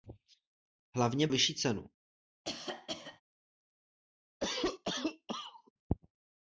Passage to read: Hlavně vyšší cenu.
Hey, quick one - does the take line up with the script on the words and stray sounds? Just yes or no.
no